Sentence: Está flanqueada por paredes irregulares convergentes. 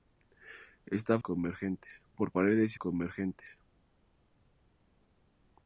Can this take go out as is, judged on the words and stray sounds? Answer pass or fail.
fail